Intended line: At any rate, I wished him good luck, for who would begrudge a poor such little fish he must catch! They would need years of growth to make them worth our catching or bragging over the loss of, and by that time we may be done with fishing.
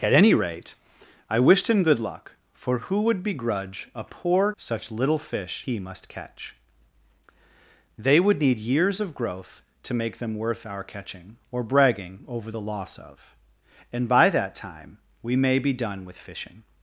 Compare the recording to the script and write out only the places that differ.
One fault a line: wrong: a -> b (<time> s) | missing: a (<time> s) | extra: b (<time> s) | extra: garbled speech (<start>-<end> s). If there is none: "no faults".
no faults